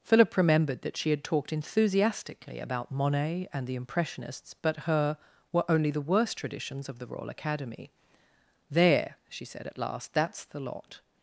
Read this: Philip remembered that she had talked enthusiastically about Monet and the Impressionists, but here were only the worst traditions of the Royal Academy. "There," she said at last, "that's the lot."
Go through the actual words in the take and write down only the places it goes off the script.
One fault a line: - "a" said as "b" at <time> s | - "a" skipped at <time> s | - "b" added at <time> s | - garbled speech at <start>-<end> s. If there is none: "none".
- "here" said as "her" at 4.8 s